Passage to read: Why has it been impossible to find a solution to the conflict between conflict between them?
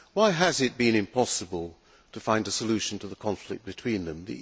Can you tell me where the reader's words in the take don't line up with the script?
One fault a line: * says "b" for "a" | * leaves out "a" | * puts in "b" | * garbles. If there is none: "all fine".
* leaves out "conflict between"